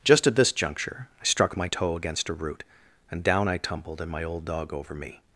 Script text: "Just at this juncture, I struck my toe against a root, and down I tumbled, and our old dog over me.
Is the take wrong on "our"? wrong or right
wrong